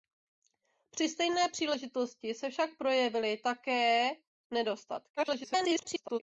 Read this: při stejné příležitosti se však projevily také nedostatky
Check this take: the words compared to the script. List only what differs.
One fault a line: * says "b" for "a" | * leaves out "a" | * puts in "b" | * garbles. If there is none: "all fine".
* garbles